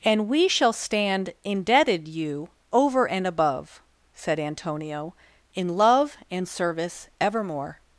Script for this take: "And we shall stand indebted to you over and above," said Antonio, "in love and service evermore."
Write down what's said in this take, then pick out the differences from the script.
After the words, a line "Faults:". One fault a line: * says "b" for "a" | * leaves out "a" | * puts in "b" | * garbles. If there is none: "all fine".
"And we shall stand indebted you over and above," said Antonio, "in love and service evermore."
Faults:
* leaves out "to"